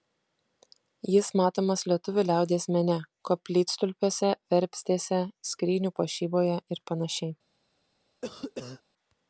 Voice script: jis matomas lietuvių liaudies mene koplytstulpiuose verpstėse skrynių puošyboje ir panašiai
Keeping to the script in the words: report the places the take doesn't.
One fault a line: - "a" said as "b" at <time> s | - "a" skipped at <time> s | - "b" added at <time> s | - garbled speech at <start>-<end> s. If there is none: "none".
none